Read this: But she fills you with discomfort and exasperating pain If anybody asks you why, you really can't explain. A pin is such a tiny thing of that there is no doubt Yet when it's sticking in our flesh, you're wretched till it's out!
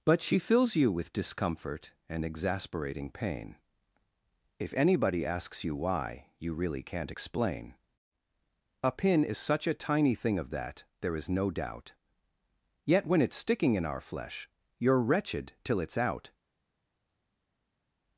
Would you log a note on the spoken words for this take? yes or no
no